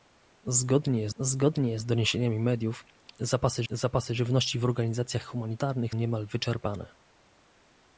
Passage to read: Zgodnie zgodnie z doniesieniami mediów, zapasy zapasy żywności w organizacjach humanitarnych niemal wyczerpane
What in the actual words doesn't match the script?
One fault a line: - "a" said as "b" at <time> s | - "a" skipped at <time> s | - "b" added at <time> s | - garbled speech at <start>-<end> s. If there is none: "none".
none